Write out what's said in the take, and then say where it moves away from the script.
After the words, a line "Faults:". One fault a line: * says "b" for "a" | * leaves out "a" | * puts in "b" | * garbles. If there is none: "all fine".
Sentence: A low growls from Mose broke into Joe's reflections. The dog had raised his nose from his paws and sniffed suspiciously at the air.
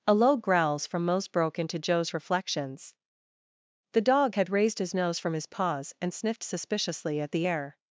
A low growls from Mose broke into Joe's reflections. The dog had raised his nose from his paws and sniffed suspiciously at the air.
Faults:
all fine